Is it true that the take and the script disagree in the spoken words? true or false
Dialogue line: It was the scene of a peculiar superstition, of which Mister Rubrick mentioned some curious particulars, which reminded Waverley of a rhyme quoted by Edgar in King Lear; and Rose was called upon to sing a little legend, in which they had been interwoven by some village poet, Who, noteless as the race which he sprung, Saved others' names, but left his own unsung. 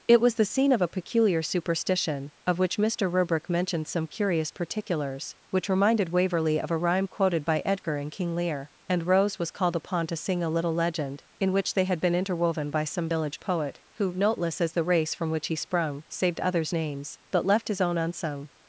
true